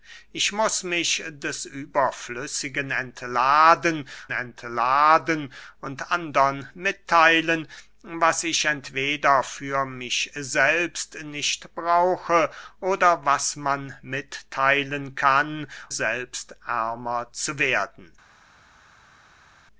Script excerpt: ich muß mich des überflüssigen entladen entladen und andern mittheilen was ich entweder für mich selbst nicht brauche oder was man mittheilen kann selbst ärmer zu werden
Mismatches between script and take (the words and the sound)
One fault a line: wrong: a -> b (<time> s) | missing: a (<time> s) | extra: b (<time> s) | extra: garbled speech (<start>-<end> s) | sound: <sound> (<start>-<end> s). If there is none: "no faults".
no faults